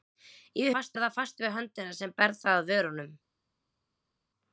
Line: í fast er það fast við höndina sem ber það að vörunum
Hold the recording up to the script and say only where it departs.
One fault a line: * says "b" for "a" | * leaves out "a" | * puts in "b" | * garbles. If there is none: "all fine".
all fine